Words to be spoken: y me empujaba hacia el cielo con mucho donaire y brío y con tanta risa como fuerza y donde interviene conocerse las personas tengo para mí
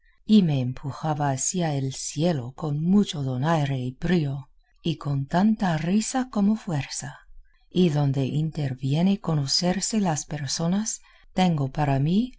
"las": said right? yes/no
yes